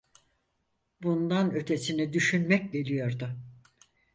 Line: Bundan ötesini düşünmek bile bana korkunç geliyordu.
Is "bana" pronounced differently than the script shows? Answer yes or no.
yes